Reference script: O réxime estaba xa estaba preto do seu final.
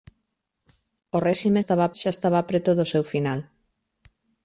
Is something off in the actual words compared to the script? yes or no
no